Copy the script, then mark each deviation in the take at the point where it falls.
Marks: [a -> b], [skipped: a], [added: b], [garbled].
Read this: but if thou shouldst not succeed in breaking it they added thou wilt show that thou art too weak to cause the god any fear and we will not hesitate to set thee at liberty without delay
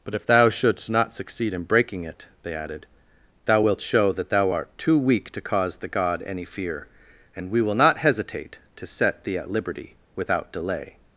but if thou shouldst not succeed in breaking it they added thou wilt show that thou art too weak to cause the god any fear and we will not hesitate to set thee at liberty without delay